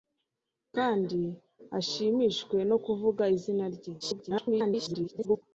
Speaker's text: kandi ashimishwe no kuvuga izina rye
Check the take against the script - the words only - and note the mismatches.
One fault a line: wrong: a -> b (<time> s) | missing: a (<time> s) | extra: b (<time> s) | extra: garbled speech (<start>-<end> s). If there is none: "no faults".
extra: garbled speech (4.0-5.4 s)